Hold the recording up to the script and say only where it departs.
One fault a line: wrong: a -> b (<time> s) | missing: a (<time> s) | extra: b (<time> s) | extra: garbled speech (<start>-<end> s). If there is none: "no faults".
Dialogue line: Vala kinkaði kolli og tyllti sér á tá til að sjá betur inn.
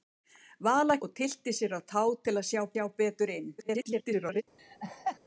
missing: kinkaði kolli (0.9 s)
extra: sjá (2.7 s)
extra: garbled speech (3.6-4.4 s)